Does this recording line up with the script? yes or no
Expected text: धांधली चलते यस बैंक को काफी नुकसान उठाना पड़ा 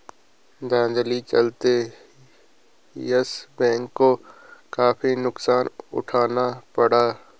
yes